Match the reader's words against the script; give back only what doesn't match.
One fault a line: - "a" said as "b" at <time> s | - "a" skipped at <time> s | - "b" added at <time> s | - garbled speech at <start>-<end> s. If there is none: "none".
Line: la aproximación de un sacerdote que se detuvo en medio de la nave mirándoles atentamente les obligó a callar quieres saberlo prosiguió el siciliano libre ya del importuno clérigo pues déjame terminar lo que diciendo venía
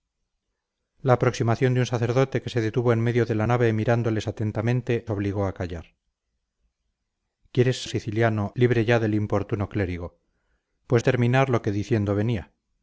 - "les" skipped at 5.1 s
- "saberlo prosiguió" skipped at 7.8 s
- "déjame" skipped at 11.0 s